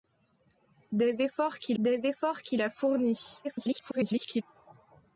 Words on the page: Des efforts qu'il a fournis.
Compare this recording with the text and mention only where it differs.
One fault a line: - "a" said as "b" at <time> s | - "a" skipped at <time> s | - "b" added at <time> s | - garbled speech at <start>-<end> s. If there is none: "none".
- "des efforts qu'il" added at 1.8 s
- garbled speech at 3.4-4.4 s